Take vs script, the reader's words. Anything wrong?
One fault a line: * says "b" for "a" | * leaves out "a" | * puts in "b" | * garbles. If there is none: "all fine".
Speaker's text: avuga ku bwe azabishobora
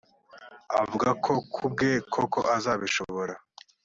* puts in "ko"
* puts in "koko"